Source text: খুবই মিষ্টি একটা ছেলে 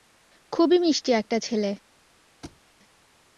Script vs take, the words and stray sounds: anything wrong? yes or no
yes